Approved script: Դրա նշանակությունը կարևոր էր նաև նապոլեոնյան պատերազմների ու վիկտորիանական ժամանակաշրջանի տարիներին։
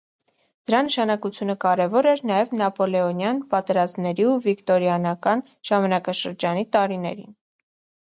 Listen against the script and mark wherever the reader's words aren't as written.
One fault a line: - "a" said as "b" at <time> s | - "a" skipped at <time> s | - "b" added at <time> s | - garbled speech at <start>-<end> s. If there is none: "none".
none